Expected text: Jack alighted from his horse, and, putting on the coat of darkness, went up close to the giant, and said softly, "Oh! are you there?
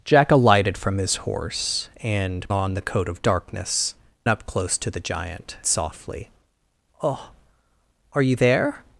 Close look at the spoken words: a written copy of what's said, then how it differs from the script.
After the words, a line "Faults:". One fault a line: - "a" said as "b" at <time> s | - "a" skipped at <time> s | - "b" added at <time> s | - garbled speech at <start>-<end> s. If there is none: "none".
Jack alighted from his horse, and, on the coat of darkness, up close to the giant, softly, "Oh! are you there?
Faults:
- "putting" skipped at 2.5 s
- "went" skipped at 3.9 s
- "and said" skipped at 5.6 s